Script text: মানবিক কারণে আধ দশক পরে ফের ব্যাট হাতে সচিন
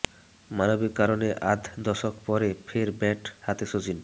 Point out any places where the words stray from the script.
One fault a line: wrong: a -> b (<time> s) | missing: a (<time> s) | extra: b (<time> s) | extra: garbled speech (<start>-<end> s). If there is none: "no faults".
no faults